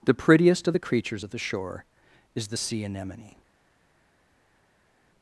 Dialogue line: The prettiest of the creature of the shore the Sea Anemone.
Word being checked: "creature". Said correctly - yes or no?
no